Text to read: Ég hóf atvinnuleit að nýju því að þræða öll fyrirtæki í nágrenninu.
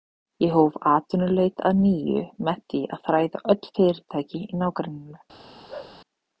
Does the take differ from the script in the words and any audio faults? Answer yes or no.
yes